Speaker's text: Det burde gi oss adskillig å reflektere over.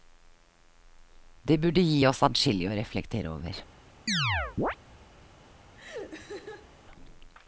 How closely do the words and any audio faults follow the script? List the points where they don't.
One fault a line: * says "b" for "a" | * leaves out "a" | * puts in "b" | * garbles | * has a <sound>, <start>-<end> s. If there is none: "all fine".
* has a chirp, 4.1-4.8 s
* has a laugh, 5.7-6.7 s